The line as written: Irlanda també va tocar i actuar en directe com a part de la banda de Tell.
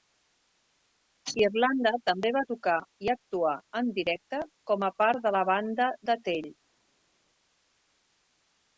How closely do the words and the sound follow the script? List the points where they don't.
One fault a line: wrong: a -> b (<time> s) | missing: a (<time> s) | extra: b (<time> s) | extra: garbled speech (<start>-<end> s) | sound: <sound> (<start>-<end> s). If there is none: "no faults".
no faults